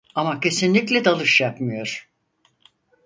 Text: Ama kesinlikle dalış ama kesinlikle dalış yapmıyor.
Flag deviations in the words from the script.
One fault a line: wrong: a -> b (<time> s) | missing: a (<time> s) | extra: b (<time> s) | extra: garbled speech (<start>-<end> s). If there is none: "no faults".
missing: ama kesinlikle dalış (1.4 s)